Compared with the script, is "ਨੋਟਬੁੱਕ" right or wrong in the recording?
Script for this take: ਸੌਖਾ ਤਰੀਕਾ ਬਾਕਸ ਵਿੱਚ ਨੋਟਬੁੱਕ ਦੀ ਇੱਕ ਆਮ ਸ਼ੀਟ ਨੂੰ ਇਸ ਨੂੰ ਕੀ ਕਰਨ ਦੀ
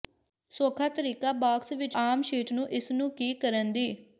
wrong